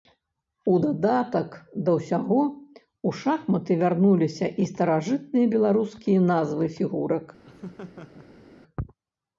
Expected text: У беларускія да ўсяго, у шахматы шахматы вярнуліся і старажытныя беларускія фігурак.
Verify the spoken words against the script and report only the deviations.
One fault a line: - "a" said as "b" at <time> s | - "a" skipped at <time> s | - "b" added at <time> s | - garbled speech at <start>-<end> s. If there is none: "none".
- "беларускія" said as "дадатак" at 0.8 s
- "шахматы" skipped at 3.8 s
- "назвы" added at 6.3 s